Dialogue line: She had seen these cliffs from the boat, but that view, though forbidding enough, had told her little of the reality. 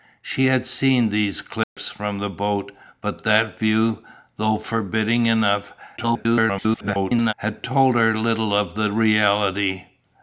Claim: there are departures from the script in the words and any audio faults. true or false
true